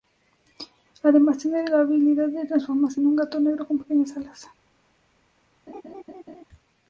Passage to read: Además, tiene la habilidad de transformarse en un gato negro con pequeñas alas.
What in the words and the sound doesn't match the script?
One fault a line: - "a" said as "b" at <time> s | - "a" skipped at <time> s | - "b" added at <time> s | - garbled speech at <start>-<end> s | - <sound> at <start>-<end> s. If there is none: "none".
- laugh at 5.7-6.4 s